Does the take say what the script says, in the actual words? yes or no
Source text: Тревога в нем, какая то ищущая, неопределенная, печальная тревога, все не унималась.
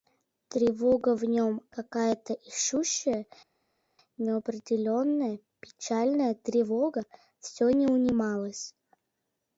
yes